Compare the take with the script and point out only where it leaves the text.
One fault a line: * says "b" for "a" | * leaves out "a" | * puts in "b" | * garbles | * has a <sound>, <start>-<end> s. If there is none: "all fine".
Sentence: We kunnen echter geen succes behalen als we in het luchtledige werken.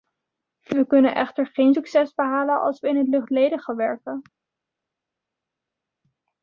all fine